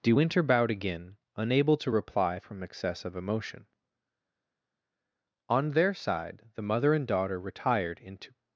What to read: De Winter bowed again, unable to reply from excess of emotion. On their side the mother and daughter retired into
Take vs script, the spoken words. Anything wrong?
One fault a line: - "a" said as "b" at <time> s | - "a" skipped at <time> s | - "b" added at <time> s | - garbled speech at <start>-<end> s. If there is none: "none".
none